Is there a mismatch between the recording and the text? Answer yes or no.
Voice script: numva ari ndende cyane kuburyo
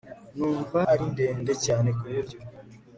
no